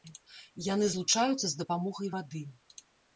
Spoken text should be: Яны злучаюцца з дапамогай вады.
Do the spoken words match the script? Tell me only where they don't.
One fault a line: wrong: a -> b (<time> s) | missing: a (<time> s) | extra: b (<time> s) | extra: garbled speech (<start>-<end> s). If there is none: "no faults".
no faults